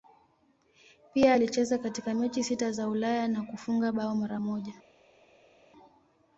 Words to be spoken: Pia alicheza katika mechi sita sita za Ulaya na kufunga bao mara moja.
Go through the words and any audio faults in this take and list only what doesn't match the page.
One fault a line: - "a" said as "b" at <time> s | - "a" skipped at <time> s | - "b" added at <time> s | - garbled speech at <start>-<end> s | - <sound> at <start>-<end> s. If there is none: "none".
- "sita" skipped at 2.7 s